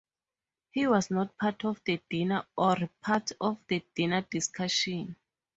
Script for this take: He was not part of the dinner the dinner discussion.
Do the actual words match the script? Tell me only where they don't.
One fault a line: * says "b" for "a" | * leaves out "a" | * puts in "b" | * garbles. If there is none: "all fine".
* puts in "or part of"